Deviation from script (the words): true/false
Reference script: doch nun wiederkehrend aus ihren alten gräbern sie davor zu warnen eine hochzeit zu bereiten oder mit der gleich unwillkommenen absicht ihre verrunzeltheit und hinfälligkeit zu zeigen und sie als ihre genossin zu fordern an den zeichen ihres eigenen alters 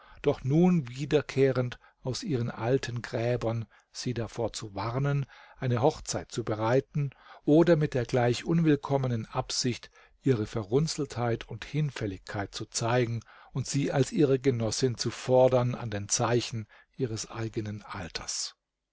false